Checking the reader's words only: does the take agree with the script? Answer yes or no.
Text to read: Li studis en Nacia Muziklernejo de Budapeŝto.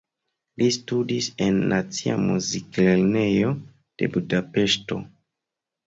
yes